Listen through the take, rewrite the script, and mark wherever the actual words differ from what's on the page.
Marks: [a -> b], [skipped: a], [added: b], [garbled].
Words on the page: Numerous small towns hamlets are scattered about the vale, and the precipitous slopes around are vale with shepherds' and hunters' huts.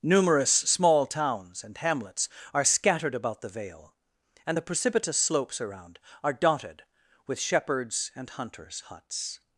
Numerous small towns [added: and] hamlets are scattered about the vale, and the precipitous slopes around are [vale -> dotted] with shepherds' and hunters' huts.